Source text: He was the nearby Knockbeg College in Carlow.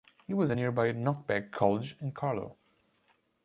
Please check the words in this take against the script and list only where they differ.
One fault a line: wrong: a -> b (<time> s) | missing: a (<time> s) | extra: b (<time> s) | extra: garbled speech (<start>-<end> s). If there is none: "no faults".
no faults